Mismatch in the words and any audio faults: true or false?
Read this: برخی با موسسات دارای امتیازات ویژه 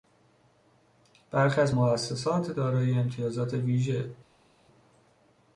true